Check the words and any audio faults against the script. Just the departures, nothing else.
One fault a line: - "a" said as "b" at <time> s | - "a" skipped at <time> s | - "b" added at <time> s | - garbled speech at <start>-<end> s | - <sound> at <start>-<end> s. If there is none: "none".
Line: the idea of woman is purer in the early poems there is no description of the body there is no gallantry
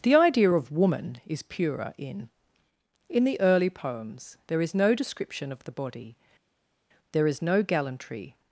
- "in" added at 3.1 s